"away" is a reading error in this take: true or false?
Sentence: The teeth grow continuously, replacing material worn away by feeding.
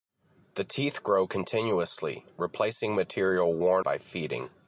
true